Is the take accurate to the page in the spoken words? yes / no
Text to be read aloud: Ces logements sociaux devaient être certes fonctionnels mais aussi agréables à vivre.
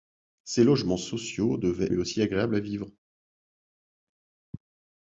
no